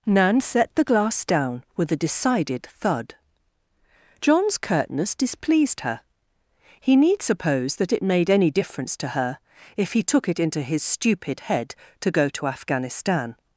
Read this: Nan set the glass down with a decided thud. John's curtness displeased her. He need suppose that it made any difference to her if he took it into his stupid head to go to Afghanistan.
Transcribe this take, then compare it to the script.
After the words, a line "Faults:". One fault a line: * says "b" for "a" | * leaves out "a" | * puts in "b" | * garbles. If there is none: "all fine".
Nan set the glass down with a decided thud. John's curtness displeased her. He need suppose that it made any difference to her if he took it into his stupid head to go to Afghanistan.
Faults:
all fine